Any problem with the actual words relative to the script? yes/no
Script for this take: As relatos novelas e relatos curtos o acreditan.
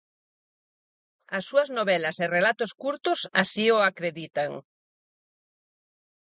yes